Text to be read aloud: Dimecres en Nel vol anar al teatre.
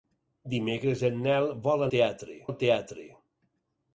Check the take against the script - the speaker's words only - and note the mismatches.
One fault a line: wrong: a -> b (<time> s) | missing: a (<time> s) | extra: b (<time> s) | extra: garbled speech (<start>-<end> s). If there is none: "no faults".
wrong: anar -> teatre (2.0 s)